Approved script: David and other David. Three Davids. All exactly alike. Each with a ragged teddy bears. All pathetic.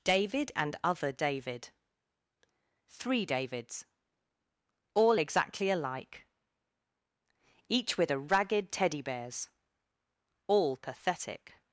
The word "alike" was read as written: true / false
true